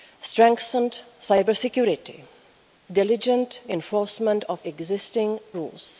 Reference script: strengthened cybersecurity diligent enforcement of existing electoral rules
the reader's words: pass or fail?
fail